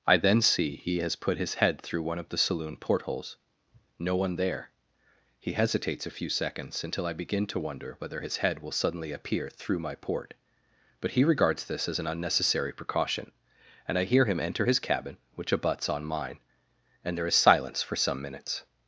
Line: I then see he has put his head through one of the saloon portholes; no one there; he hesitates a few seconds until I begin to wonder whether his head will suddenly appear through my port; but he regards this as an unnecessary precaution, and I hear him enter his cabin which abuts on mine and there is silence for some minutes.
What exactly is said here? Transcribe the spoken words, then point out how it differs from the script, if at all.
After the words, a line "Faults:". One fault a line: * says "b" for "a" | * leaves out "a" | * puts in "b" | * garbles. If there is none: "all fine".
I then see he has put his head through one of the saloon portholes; no one there; he hesitates a few seconds until I begin to wonder whether his head will suddenly appear through my port; but he regards this as an unnecessary precaution, and I hear him enter his cabin which abuts on mine and there is silence for some minutes.
Faults:
all fine